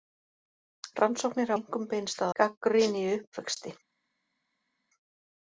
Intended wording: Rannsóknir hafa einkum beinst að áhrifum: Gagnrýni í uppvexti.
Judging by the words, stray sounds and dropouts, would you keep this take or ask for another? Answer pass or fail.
fail